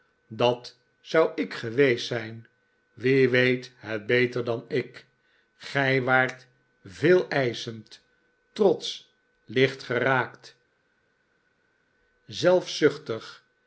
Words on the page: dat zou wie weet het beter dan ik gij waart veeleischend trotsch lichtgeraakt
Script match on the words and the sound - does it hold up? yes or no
no